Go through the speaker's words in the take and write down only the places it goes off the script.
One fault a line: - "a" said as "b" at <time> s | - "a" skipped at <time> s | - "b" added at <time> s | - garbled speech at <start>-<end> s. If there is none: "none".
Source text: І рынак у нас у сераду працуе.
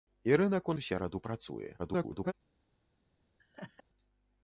- "нас" skipped at 0.8 s
- garbled speech at 1.8-2.3 s